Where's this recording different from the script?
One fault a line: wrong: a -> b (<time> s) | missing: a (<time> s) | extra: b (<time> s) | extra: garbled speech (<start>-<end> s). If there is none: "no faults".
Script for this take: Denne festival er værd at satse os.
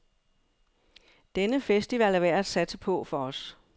extra: på for (2.8 s)